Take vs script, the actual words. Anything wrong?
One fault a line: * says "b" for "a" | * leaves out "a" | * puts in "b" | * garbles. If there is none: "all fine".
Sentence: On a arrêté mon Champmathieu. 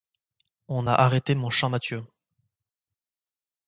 all fine